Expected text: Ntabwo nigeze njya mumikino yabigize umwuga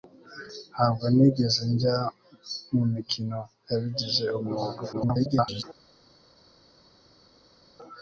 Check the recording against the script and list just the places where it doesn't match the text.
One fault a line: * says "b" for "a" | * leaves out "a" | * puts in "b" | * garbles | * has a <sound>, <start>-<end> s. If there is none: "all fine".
* garbles